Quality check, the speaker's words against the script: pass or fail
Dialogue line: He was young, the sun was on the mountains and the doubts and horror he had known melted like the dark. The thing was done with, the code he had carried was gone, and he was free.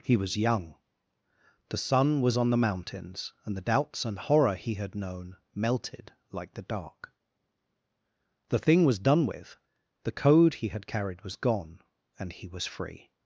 pass